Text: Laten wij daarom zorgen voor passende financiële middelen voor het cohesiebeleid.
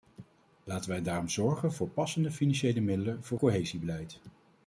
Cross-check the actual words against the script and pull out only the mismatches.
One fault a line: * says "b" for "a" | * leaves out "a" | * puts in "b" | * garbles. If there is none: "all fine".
* leaves out "het"